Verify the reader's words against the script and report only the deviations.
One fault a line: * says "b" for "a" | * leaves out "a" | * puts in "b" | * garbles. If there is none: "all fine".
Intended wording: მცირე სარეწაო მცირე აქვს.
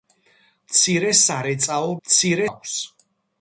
all fine